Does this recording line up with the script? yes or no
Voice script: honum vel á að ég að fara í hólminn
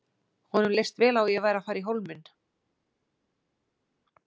no